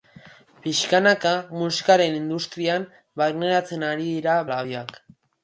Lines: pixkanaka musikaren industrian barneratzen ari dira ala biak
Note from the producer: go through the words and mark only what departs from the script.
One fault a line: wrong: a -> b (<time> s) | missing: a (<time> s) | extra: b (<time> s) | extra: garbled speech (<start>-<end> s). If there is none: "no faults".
no faults